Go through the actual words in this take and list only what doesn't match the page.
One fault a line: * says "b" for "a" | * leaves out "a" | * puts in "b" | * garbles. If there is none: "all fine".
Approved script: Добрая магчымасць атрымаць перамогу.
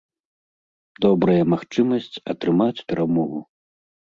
all fine